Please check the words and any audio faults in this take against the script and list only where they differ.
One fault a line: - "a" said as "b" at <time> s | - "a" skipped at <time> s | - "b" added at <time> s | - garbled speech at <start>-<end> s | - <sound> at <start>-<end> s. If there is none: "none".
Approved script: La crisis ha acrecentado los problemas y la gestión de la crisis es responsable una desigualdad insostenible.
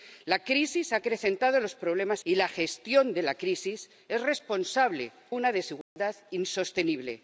- dropout at 5.8-6.0 s